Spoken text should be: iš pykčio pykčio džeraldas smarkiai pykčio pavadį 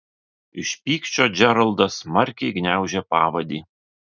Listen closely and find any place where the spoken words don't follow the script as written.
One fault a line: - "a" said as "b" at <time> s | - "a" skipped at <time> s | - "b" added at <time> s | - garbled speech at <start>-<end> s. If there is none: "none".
- "pykčio" skipped at 1.3 s
- "pykčio" said as "gniaužė" at 2.6 s